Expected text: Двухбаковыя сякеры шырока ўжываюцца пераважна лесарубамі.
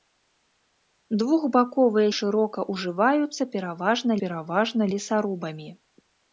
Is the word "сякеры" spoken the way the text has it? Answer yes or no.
no